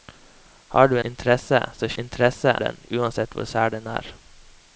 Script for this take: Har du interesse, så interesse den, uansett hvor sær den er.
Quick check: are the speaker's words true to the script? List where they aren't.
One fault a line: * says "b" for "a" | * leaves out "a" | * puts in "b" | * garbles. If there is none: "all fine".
all fine